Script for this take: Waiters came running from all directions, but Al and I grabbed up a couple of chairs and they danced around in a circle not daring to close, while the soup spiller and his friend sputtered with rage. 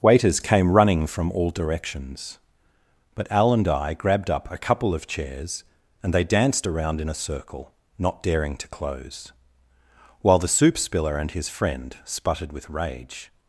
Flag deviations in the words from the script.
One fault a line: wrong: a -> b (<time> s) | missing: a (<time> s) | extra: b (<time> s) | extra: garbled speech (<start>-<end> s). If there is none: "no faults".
no faults